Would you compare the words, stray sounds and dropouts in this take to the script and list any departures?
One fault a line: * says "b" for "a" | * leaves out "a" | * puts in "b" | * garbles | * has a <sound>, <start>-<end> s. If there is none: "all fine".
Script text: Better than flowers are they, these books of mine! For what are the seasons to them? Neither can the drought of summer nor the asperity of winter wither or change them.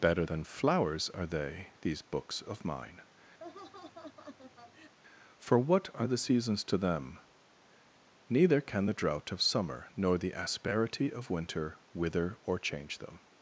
* has a laugh, 3.4-4.9 s